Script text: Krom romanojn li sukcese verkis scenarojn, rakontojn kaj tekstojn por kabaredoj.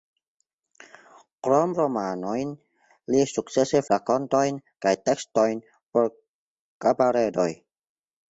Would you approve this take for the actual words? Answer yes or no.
no